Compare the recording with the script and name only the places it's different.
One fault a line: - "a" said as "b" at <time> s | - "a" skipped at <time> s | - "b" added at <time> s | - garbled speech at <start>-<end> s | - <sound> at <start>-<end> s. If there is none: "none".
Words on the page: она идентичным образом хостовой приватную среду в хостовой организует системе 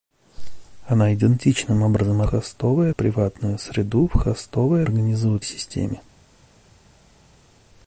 none